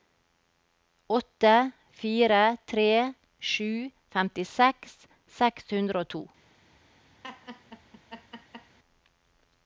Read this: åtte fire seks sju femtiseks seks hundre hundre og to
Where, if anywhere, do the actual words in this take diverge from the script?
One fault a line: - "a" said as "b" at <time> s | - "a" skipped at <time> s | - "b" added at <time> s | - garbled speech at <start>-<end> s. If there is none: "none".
- "seks" said as "tre" at 2.7 s
- "hundre" skipped at 6.1 s